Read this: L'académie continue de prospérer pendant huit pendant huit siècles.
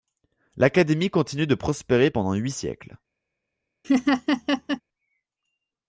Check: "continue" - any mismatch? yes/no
no